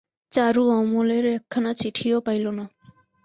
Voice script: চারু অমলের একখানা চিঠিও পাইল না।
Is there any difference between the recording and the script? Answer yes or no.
no